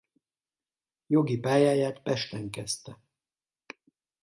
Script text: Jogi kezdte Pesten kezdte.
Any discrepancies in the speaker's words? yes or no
yes